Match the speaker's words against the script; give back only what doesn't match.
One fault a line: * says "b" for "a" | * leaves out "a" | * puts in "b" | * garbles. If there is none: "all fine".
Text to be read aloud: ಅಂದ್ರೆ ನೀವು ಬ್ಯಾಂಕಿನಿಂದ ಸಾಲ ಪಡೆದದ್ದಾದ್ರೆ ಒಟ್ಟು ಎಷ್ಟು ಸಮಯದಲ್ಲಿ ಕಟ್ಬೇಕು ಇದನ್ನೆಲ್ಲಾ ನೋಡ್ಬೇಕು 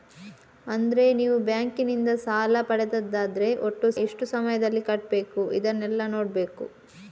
all fine